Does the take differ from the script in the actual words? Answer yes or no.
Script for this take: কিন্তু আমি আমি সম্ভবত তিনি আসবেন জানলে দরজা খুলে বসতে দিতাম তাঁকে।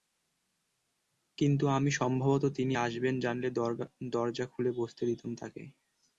yes